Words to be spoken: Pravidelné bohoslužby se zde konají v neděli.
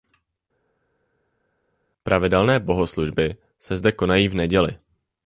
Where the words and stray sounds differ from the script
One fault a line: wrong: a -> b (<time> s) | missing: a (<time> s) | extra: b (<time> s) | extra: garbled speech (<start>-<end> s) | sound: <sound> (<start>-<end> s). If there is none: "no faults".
no faults